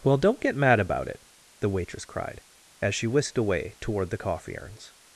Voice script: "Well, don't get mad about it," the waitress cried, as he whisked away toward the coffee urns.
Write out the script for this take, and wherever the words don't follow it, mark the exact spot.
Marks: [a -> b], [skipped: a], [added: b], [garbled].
"Well, don't get mad about it," the waitress cried, as [he -> she] whisked away toward the coffee urns.